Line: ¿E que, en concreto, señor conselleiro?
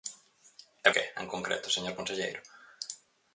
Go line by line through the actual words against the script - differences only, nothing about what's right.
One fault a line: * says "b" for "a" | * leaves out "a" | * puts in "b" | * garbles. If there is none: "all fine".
all fine